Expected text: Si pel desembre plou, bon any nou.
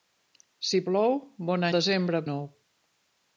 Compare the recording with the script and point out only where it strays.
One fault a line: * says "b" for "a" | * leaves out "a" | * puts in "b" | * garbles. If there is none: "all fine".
* leaves out "pel desembre"
* says "desembre" for "any"